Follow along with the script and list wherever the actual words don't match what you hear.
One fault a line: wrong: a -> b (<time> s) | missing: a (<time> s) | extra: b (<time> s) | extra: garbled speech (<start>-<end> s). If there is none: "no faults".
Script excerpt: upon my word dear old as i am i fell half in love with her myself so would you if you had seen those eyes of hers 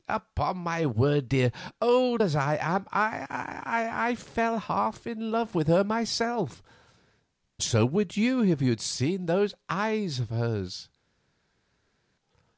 no faults